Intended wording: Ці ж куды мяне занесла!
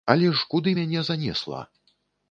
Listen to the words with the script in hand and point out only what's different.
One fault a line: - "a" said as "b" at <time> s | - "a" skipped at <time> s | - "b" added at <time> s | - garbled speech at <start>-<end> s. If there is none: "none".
- "Ці" said as "Але" at 0.1 s